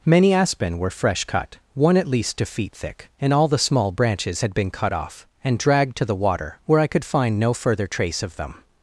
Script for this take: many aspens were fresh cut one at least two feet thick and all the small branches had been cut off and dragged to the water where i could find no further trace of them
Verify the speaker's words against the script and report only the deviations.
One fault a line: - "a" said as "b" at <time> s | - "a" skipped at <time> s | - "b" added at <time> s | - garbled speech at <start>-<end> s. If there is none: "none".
- "aspens" said as "aspen" at 0.3 s